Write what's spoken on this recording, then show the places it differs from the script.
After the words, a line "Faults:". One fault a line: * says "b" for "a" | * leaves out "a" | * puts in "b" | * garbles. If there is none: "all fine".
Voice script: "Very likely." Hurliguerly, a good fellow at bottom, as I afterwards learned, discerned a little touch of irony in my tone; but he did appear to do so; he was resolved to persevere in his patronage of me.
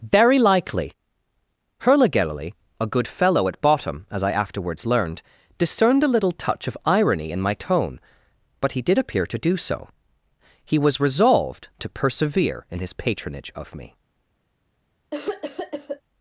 "Very likely." Hurliguerly, a good fellow at bottom, as I afterwards learned, discerned a little touch of irony in my tone; but he did appear to do so; he was resolved to persevere in his patronage of me.
Faults:
all fine